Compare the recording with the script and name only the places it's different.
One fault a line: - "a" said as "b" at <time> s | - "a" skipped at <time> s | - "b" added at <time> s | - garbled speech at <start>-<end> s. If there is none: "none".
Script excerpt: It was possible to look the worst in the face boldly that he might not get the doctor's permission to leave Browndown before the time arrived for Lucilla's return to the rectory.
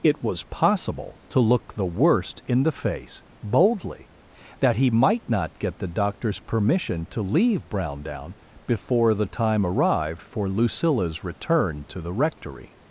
none